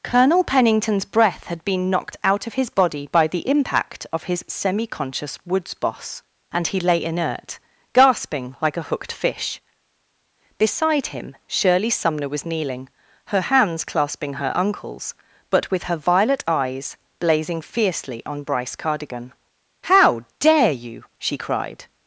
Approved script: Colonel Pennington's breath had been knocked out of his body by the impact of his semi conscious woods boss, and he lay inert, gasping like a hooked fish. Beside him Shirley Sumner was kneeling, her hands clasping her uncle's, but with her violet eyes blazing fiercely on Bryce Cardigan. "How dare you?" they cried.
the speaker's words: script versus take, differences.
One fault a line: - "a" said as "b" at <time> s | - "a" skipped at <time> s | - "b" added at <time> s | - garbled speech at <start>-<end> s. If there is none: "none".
- "they" said as "she" at 21.2 s